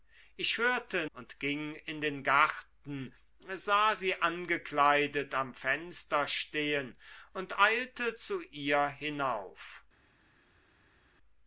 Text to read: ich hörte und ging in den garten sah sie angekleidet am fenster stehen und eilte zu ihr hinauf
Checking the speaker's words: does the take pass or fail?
pass